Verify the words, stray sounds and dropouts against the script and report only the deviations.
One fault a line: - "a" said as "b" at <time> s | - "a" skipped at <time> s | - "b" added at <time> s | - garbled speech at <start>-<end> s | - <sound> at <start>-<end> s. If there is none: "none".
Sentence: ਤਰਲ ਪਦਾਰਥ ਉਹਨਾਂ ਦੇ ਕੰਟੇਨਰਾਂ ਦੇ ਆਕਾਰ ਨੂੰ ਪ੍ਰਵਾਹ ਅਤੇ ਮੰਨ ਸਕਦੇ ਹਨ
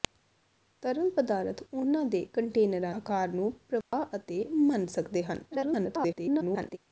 - "ਦੇ" skipped at 2.9 s
- dropout at 3.8-3.9 s
- garbled speech at 5.5-6.8 s